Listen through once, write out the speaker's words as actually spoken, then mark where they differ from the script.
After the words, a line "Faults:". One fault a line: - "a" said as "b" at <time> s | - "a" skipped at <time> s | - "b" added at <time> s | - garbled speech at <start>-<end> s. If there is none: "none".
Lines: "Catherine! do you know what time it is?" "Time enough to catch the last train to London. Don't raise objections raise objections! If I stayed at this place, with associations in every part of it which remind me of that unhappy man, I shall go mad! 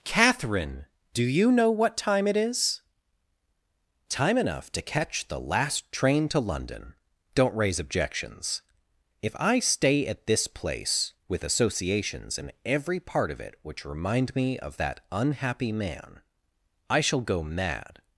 "Catherine! do you know what time it is?" "Time enough to catch the last train to London. Don't raise objections! If I stay at this place, with associations in every part of it which remind me of that unhappy man, I shall go mad!
Faults:
- "raise objections" skipped at 8.6 s
- "stayed" said as "stay" at 9.6 s